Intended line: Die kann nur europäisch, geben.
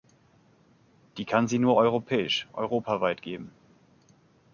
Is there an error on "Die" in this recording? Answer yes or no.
no